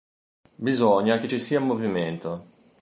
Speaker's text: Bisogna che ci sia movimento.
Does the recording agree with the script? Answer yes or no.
yes